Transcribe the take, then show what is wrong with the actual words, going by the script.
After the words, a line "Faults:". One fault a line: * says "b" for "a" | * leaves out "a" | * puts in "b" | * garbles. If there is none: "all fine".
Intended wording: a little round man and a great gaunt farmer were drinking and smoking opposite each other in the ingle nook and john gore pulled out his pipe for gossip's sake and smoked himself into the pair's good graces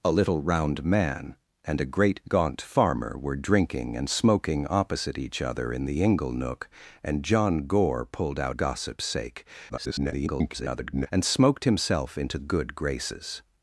a little round man and a great gaunt farmer were drinking and smoking opposite each other in the ingle nook and john gore pulled out gossip's sake [garbled] and smoked himself into good graces
Faults:
* leaves out "his pipe for"
* garbles
* leaves out "the pair's"